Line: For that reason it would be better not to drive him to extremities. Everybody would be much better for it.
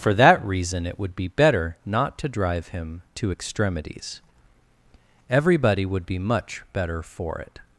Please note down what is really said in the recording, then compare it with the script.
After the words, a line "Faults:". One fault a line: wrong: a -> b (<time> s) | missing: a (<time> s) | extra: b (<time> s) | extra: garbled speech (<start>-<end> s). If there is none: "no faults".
For that reason it would be better not to drive him to extremities. Everybody would be much better for it.
Faults:
no faults